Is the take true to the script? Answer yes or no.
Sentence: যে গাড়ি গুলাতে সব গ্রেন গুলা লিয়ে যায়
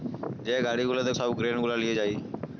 yes